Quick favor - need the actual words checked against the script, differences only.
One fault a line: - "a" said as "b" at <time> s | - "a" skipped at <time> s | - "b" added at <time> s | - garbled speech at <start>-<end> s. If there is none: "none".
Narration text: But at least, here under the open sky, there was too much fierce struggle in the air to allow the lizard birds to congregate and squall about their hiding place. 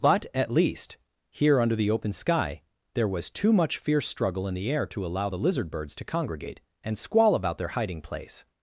none